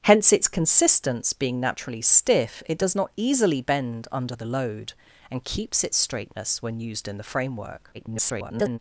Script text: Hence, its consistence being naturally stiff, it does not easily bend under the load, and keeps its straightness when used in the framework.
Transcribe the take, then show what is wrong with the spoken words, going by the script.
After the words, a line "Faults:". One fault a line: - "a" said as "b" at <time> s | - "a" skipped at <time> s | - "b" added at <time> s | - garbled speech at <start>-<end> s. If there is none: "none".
Hence, its consistence being naturally stiff, it does not easily bend under the load, and keeps its straightness when used in the framework. [garbled]
Faults:
- garbled speech at 7.9-8.8 s